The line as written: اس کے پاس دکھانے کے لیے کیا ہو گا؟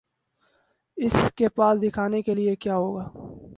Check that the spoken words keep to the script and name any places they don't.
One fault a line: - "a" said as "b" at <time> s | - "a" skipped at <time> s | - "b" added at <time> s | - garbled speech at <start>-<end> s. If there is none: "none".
none